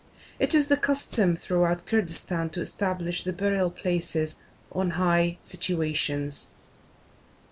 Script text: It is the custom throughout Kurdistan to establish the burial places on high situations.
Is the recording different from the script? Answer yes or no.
no